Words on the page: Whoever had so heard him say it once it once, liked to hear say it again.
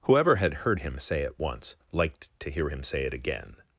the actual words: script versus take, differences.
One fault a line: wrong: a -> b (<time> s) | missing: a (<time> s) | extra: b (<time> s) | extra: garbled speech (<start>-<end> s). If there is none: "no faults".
missing: so (0.7 s)
missing: it once (1.8 s)
extra: him (2.7 s)